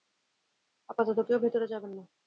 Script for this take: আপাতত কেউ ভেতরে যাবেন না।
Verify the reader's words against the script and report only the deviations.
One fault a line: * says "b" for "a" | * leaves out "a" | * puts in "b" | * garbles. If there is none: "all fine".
all fine